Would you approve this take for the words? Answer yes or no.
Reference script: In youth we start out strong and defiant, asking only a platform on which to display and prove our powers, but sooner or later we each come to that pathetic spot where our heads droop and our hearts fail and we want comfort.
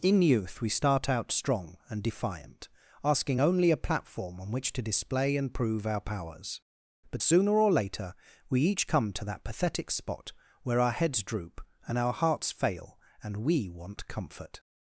yes